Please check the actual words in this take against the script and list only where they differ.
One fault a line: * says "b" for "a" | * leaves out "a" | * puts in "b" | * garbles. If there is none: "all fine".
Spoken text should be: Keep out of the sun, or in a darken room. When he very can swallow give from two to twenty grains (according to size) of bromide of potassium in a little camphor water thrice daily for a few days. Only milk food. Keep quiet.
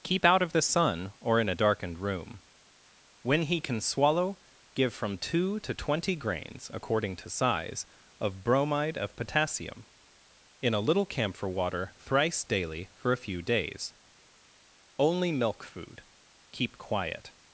* says "darkened" for "darken"
* leaves out "very"